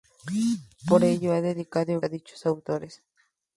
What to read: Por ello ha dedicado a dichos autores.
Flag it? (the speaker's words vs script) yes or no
no